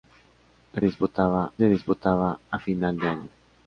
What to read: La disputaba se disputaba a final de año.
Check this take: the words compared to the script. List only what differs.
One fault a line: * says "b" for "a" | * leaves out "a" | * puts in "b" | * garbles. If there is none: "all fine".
all fine